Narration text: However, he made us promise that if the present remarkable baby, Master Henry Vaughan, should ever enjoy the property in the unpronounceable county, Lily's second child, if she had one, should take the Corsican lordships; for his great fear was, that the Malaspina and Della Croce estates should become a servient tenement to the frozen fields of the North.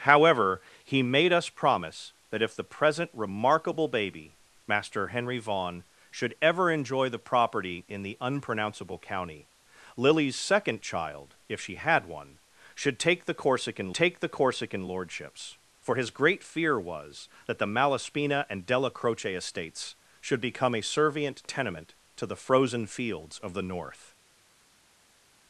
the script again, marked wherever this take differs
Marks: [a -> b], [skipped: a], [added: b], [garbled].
However, he made us promise that if the present remarkable baby, Master Henry Vaughan, should ever enjoy the property in the unpronounceable county, Lily's second child, if she had one, should take the Corsican [added: take the Corsican] lordships; for his great fear was, that the Malaspina and Della Croce estates should become a servient tenement to the frozen fields of the North.